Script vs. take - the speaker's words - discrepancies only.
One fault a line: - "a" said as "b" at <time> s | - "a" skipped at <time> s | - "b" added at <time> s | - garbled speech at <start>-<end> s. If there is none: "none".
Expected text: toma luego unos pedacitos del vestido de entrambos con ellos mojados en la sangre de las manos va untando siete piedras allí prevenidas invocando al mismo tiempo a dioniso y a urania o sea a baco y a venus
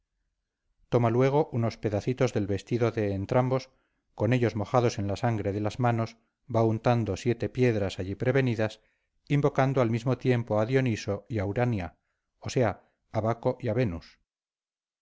none